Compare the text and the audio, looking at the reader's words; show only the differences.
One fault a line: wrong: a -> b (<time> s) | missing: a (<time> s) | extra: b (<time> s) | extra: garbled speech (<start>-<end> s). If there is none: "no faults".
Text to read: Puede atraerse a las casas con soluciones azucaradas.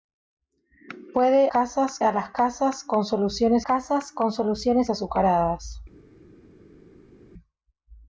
wrong: atraerse -> casas (1.5 s)
extra: casas con soluciones (3.6 s)